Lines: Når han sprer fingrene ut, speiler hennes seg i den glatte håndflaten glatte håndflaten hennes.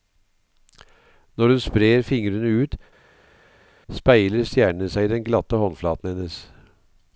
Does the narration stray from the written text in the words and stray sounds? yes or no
yes